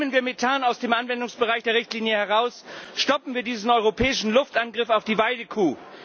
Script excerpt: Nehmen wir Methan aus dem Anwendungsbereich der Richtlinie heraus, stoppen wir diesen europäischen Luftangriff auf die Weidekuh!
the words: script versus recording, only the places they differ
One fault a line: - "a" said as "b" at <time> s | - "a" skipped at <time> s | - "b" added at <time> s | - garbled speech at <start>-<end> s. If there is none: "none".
none